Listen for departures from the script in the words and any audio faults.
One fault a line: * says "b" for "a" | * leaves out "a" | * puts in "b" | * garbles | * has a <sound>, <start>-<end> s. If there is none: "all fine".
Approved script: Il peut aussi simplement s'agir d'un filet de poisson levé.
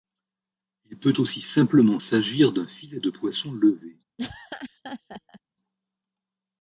* has a laugh, 4.2-5.4 s